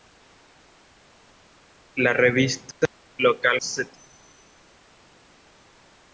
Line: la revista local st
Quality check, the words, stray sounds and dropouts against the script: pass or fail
pass